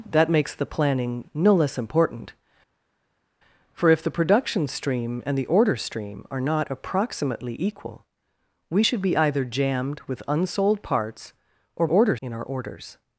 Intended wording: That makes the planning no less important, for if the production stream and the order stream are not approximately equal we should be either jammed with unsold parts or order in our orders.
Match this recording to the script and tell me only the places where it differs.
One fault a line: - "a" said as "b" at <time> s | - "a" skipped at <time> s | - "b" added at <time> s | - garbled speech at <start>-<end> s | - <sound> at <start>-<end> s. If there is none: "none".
none